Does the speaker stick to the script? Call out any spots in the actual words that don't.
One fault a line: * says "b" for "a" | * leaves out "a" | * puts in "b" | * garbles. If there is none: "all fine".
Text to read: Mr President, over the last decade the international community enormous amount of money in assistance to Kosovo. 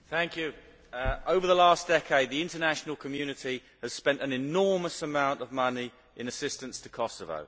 * puts in "has spent an"